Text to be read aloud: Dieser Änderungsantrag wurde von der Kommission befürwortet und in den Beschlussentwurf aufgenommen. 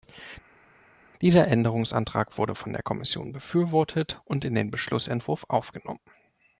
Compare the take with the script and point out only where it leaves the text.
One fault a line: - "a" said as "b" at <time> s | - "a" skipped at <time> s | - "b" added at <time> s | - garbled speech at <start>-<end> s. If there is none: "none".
none